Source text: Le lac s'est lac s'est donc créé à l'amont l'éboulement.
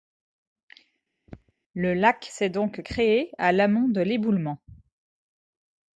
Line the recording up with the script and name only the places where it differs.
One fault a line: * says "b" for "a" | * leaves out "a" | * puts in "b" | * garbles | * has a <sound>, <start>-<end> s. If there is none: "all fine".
* has a throat clearing, 1.3-1.5 s
* leaves out "lac s'est"
* puts in "de"